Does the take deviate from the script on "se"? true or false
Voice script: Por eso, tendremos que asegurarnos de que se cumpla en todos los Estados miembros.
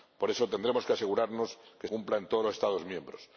true